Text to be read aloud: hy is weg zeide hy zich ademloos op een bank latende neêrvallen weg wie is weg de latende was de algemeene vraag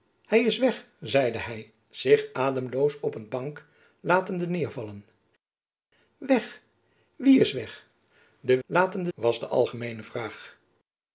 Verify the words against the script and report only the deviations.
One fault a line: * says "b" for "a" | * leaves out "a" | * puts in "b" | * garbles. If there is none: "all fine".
all fine